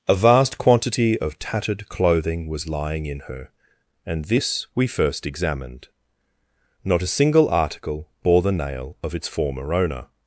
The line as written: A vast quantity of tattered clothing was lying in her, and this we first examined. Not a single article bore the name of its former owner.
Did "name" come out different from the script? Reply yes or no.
yes